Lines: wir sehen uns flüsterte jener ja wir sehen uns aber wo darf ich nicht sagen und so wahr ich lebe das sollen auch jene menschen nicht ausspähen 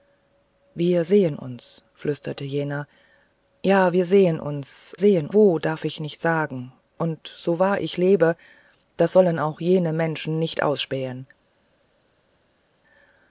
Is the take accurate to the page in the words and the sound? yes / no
no